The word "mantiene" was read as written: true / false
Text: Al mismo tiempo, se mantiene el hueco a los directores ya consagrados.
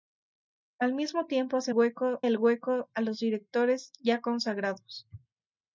false